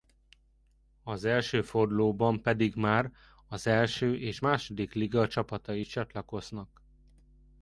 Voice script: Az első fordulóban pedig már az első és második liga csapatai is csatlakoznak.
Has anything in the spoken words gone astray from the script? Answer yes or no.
no